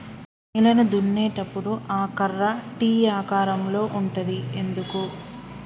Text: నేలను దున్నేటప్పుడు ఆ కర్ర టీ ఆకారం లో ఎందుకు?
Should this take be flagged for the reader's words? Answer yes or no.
yes